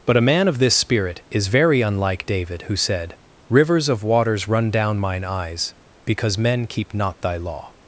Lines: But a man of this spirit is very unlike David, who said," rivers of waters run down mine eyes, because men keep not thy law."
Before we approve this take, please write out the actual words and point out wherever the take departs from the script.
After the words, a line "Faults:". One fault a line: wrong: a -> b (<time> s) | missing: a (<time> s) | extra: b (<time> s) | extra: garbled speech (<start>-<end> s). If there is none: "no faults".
But a man of this spirit is very unlike David, who said," rivers of waters run down mine eyes, because men keep not thy law."
Faults:
no faults